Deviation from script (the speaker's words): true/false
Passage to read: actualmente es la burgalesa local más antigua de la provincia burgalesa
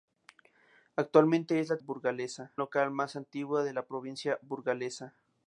false